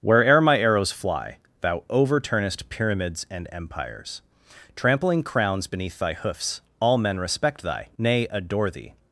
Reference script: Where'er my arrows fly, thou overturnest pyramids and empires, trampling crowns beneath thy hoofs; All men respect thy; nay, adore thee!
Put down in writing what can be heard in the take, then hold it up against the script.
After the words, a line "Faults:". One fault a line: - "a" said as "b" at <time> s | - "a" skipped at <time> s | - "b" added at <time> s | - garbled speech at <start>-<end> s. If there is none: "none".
Where'er my arrows fly, thou overturnest pyramids and empires, trampling crowns beneath thy hoofs; All men respect thy; nay, adore thee!
Faults:
none